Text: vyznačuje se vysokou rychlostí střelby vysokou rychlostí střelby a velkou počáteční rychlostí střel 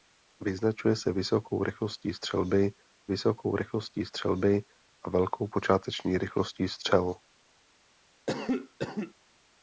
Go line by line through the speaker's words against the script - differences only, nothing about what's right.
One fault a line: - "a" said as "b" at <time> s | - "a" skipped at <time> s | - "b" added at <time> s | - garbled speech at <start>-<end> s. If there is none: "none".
none